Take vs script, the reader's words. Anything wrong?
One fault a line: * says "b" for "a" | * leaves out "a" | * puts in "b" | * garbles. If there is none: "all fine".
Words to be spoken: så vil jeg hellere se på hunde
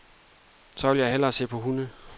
all fine